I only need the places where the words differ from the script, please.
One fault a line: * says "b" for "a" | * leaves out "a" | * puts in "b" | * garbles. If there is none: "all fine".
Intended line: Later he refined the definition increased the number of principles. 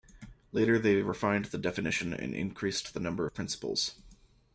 * says "they" for "he"
* puts in "and"